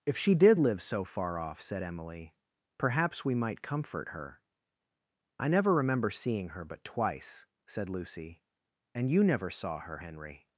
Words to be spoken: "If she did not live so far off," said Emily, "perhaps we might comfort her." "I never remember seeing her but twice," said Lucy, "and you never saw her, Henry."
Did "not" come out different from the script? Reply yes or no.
yes